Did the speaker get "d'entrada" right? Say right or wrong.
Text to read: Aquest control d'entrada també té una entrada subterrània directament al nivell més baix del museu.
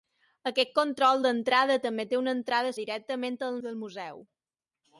right